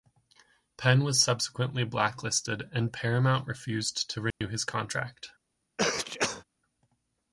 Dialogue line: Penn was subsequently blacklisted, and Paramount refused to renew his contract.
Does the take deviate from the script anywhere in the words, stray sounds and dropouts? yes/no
yes